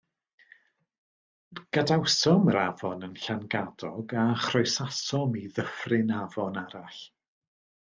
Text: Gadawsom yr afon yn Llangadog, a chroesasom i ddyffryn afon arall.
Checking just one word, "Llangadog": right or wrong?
right